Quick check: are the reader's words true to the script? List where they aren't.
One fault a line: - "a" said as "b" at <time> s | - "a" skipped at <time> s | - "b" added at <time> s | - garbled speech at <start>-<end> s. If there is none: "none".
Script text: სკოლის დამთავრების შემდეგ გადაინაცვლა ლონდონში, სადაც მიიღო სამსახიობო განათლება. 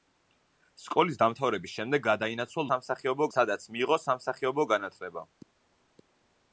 - "ლონდონში" said as "სამსახიობო" at 2.7 s